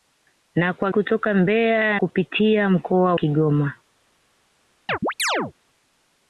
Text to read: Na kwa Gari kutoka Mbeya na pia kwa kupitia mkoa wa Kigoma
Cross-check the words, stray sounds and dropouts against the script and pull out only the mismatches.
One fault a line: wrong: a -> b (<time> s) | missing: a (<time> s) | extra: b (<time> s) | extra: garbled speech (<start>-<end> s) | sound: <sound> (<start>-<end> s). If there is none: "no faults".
missing: Gari (0.9 s)
missing: na pia kwa (2.0 s)
missing: wa (3.2 s)
sound: chirp (4.9-5.5 s)